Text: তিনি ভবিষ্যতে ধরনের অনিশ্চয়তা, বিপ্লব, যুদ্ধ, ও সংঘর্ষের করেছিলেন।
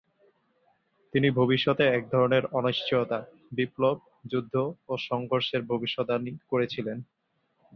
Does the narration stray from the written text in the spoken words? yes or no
yes